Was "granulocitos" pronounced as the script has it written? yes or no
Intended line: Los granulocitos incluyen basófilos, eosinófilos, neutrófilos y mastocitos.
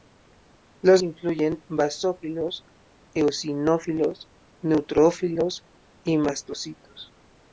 no